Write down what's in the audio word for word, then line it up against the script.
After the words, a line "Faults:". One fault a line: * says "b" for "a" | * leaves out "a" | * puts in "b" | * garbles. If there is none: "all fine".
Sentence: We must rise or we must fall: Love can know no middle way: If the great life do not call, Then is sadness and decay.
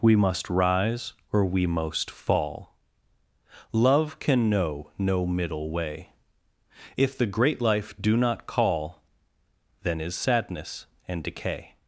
We must rise or we most fall: Love can know no middle way: If the great life do not call, Then is sadness and decay.
Faults:
* says "most" for "must"